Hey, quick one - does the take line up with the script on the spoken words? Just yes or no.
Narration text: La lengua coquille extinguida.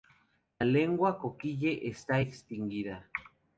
no